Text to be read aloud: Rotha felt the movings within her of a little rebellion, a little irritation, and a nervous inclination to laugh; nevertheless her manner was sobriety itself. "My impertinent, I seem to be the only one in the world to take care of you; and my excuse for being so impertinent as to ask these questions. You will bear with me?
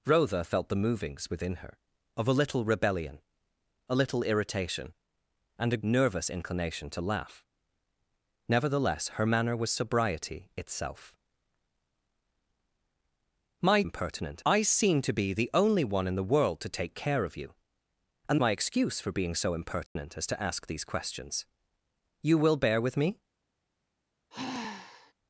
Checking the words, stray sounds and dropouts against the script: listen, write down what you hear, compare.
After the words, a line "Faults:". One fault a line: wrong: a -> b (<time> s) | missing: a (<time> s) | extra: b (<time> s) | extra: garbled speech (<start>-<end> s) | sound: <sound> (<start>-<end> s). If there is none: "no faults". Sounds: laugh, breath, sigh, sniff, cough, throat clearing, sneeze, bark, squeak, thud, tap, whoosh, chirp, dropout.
Rotha felt the movings within her of a little rebellion, a little irritation, and a nervous inclination to laugh; nevertheless her manner was sobriety itself. "My impertinent, I seem to be the only one in the world to take care of you; and my excuse for being so impertinent as to ask these questions. You will bear with me?
Faults:
sound: dropout (19.9-20.0 s)
sound: sigh (24.3-25.1 s)